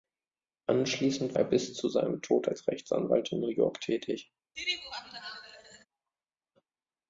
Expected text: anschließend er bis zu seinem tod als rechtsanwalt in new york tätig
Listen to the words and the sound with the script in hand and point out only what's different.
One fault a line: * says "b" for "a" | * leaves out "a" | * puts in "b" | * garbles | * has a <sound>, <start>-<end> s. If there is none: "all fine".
* has a laugh, 4.6-5.9 s